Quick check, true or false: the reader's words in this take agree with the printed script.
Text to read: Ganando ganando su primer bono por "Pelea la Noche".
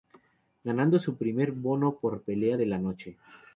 false